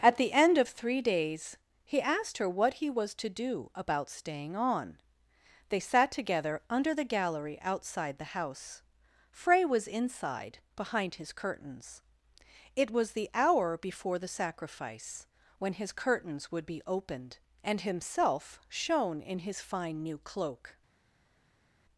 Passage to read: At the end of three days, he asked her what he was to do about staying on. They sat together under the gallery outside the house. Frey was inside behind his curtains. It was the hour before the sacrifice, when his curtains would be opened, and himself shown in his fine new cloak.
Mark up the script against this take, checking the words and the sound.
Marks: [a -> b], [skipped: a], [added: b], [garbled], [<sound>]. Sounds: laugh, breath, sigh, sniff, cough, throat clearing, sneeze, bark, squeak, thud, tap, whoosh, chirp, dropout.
At the end of three days, he asked her what he was to do about staying on. They sat together under the gallery outside the house. Frey was inside behind his curtains. It was the hour before the sacrifice, when his curtains would be opened, and himself shown in his fine new cloak.